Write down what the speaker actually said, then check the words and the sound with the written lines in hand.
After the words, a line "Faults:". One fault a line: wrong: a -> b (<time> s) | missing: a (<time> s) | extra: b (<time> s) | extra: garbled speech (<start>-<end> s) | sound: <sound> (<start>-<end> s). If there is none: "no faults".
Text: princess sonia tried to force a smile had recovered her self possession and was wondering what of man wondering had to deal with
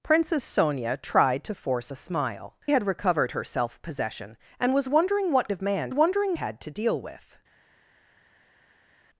princess sonia tried to force a smile had recovered her self possession and was wondering what of man wondering had to deal with
Faults:
no faults